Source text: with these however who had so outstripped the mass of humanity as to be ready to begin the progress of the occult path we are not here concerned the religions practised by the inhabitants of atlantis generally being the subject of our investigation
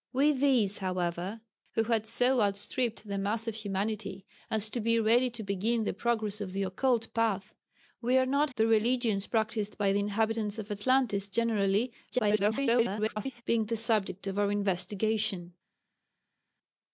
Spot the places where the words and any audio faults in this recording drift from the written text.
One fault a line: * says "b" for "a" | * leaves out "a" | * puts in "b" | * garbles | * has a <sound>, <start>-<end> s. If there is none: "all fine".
* leaves out "here concerned"
* garbles